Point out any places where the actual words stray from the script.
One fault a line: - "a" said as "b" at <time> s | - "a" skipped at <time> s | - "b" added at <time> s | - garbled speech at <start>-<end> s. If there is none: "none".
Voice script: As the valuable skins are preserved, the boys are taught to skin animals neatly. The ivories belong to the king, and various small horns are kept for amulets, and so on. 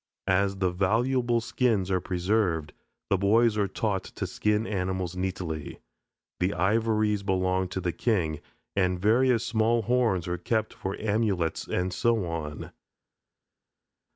none